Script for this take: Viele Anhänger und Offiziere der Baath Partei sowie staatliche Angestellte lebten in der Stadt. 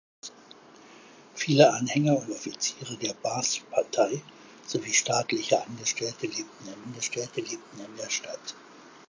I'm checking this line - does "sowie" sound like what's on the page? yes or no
yes